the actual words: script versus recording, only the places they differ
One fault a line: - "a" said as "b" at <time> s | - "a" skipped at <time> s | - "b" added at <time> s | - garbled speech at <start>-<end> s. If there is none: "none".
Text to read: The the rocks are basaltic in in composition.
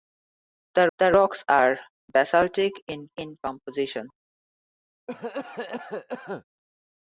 none